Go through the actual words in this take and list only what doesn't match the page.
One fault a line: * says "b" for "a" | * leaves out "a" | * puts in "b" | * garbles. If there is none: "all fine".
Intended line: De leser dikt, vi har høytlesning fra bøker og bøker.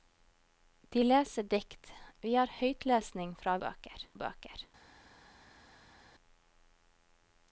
all fine